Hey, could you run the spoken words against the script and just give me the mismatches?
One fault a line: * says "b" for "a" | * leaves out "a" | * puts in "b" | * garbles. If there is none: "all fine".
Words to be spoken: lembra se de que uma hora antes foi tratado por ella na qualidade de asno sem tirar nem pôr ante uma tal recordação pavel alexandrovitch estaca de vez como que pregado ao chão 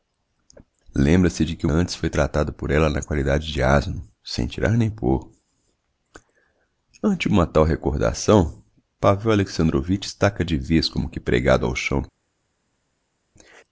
* leaves out "uma hora"